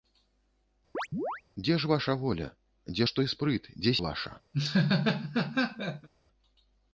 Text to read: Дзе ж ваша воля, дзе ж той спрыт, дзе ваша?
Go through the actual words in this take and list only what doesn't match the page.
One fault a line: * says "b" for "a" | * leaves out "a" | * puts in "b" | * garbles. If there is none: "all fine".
all fine